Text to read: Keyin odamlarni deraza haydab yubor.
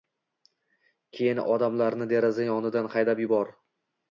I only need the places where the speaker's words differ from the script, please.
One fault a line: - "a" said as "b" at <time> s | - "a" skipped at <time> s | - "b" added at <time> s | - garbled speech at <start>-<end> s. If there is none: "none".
- "yonidan" added at 2.5 s